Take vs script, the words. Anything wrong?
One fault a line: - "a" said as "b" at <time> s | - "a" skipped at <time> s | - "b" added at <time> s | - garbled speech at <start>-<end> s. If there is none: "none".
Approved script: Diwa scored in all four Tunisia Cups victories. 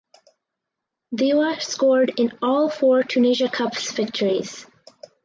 none